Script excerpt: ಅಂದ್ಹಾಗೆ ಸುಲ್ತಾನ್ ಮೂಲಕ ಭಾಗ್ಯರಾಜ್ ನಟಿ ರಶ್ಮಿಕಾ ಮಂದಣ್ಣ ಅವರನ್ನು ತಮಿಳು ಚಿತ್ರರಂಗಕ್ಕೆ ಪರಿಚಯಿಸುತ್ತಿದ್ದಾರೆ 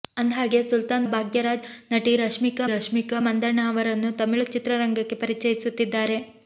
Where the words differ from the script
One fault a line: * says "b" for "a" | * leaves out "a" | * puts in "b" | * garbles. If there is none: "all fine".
* leaves out "ಮೂಲಕ"
* puts in "ರಶ್ಮಿಕಾ"